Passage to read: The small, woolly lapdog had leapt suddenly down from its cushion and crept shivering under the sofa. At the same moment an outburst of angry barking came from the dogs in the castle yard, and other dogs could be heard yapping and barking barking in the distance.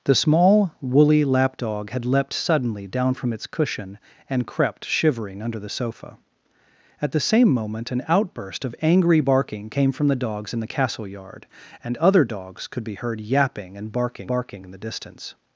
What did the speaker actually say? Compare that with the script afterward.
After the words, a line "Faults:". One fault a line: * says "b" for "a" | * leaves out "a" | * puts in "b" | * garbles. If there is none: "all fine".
The small, woolly lapdog had leapt suddenly down from its cushion and crept shivering under the sofa. At the same moment an outburst of angry barking came from the dogs in the castle yard, and other dogs could be heard yapping and barking barking in the distance.
Faults:
all fine